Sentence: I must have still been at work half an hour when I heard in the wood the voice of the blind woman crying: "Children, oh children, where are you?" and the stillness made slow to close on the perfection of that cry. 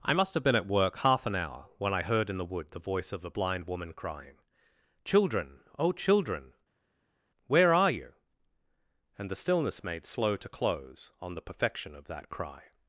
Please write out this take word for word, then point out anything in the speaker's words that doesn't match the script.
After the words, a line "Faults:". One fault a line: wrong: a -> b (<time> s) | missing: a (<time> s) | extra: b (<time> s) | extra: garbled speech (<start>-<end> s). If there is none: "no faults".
I must have been at work half an hour when I heard in the wood the voice of the blind woman crying: "Children, oh children, where are you?" and the stillness made slow to close on the perfection of that cry.
Faults:
missing: still (0.4 s)